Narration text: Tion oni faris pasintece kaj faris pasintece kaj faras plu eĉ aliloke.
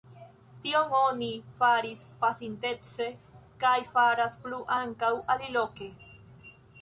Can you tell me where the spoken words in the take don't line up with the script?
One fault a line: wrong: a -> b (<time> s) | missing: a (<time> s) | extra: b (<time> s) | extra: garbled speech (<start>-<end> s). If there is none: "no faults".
missing: faris pasintece kaj (3.7 s)
wrong: eĉ -> ankaŭ (4.8 s)